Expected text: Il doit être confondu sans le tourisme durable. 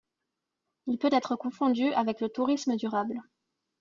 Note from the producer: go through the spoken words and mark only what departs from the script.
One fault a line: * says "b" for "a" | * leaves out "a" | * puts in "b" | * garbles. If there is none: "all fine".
* says "peut" for "doit"
* says "avec" for "sans"